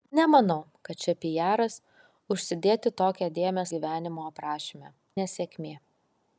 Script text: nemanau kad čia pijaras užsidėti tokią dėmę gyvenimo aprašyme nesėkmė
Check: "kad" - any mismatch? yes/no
no